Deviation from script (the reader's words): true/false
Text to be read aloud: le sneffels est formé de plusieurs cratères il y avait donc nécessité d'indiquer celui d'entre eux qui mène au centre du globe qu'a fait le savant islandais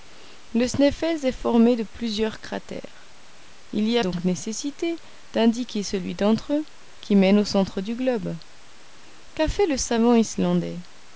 true